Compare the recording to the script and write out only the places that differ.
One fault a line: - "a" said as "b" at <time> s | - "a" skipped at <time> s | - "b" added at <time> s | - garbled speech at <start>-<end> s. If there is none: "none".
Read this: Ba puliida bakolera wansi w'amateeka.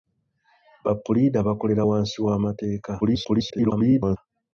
- garbled speech at 3.0-4.2 s